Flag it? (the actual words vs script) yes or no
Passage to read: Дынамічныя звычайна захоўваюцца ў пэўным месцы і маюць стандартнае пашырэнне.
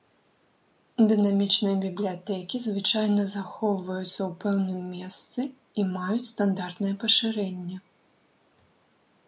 yes